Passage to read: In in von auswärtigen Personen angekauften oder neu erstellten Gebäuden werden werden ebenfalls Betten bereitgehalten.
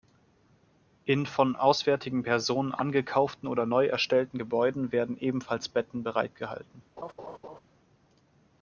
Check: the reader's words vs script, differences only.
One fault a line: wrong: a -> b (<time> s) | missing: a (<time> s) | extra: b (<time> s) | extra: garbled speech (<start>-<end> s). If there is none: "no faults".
missing: in (1.3 s)
missing: werden (5.2 s)